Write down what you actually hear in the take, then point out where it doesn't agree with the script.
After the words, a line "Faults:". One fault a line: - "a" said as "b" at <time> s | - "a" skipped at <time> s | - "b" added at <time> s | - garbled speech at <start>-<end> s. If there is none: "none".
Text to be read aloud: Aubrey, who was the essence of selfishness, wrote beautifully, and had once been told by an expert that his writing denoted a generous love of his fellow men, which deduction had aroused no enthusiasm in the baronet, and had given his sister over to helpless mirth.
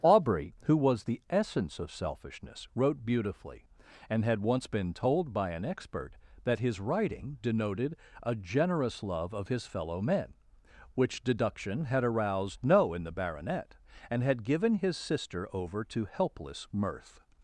Aubrey, who was the essence of selfishness, wrote beautifully, and had once been told by an expert that his writing denoted a generous love of his fellow men, which deduction had aroused no in the baronet, and had given his sister over to helpless mirth.
Faults:
- "enthusiasm" skipped at 12.9 s